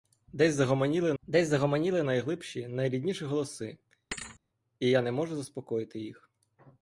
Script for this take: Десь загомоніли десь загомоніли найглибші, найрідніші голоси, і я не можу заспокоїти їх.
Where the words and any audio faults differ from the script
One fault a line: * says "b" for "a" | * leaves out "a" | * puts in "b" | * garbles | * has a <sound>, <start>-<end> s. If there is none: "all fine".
* has a thud, 4.1-4.4 s